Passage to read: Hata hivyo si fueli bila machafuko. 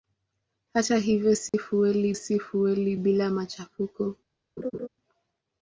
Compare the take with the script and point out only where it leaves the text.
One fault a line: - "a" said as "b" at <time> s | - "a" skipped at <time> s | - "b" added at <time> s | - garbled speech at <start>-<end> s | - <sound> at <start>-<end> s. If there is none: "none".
- dropout at 1.5-1.5 s
- "si fueli" added at 2.1 s
- laugh at 4.6-4.9 s